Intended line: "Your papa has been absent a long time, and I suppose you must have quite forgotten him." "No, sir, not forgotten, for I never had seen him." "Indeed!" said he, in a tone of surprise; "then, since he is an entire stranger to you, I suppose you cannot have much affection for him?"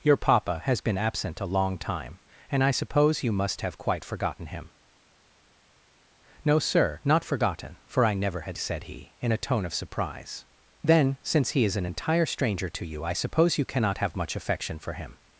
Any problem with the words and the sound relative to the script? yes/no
yes